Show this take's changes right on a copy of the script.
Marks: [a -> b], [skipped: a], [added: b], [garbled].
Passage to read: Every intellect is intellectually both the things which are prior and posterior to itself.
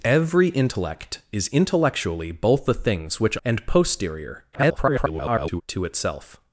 Every intellect is intellectually both the things which [skipped: are prior] and posterior [garbled] to itself.